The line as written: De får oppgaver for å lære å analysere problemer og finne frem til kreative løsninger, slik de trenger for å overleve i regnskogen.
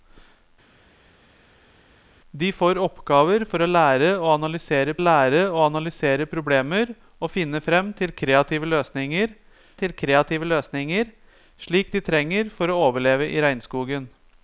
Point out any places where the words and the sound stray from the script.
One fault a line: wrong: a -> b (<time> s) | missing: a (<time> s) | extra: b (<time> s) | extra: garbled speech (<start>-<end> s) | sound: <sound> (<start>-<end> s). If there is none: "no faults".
extra: lære å analysere (5.0 s)
extra: til kreative løsninger (9.8 s)